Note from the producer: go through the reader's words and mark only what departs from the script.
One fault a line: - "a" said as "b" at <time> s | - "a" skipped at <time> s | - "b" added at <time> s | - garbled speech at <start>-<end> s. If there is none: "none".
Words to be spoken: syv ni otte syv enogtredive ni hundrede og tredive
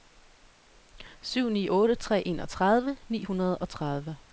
- "syv" said as "tre" at 2.0 s